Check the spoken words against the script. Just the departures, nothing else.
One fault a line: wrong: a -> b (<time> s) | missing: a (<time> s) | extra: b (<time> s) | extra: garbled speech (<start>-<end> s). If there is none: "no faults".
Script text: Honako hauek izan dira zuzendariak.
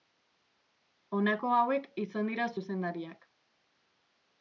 no faults